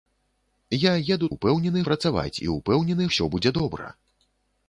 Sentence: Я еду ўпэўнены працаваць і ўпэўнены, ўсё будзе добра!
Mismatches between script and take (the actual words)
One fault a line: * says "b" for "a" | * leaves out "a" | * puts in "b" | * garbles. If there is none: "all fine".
all fine